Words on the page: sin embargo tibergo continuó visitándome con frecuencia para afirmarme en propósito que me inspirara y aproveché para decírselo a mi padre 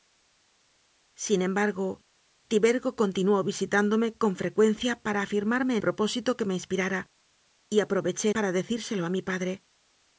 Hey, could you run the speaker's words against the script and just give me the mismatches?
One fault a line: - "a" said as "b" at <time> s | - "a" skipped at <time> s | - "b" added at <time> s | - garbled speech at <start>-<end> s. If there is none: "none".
none